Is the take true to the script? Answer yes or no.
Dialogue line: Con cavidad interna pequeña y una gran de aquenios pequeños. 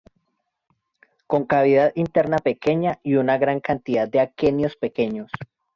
no